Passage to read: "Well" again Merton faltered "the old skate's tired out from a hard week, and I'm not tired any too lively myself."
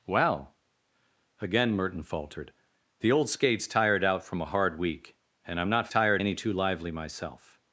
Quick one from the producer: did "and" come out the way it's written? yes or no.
yes